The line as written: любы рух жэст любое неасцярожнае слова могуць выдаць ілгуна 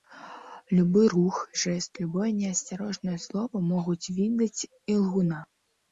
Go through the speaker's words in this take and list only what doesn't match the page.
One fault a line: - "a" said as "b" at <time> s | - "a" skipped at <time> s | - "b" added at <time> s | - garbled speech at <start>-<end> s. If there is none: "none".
none